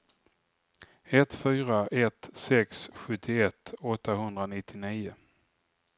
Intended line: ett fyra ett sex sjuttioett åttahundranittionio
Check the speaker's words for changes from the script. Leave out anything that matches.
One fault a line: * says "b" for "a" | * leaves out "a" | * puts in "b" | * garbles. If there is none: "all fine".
all fine